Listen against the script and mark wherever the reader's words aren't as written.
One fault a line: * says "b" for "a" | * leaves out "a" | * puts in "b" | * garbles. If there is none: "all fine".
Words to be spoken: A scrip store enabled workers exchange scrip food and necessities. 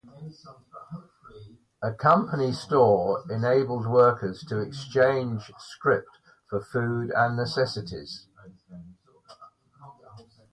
* says "company" for "scrip"
* puts in "to"
* puts in "for"